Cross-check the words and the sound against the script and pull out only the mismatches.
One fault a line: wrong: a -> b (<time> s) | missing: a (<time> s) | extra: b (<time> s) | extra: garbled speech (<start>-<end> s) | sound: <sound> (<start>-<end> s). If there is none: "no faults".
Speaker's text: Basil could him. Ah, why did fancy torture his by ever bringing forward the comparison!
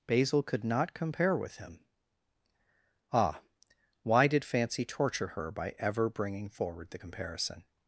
extra: not compare with (0.6 s)
wrong: his -> her (5.3 s)